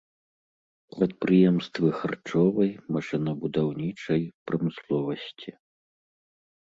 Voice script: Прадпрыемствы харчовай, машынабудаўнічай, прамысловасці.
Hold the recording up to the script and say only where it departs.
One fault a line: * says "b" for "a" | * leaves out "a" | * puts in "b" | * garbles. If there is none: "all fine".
all fine